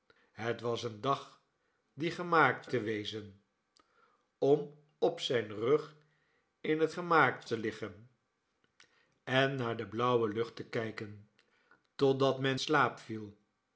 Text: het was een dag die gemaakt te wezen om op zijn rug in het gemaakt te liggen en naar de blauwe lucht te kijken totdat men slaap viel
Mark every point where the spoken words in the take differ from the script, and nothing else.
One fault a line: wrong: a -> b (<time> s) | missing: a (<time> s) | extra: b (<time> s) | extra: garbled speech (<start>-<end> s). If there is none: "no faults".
no faults